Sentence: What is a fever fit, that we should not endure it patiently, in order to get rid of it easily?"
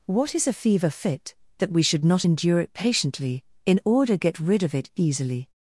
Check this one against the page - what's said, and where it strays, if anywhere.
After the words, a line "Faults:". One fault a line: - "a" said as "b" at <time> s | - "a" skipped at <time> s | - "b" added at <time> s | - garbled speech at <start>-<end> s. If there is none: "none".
What is a fever fit, that we should not endure it patiently, in order get rid of it easily?"
Faults:
- "to" skipped at 4.2 s